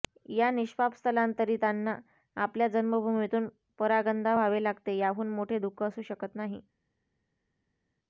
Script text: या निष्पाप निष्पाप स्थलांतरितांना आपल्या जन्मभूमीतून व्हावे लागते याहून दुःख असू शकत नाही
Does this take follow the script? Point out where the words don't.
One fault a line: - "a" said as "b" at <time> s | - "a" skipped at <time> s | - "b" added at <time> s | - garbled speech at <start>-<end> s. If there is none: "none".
- "निष्पाप" skipped at 0.9 s
- "परागंदा" added at 3.8 s
- "मोठे" added at 5.3 s